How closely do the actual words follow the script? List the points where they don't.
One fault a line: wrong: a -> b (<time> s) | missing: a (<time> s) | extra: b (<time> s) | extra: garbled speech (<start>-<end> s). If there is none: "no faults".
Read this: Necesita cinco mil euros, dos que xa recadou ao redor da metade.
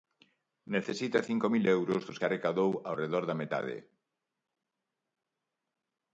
missing: que (2.2 s)